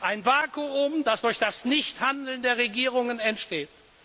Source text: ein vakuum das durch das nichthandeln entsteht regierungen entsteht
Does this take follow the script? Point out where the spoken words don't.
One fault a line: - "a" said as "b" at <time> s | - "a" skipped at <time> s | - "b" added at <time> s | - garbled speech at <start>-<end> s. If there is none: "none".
- "entsteht" said as "der" at 2.4 s